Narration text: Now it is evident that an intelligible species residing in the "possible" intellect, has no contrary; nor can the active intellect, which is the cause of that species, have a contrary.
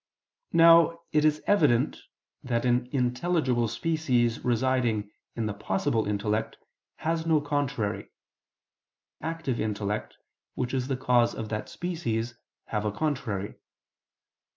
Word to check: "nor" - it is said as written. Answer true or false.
false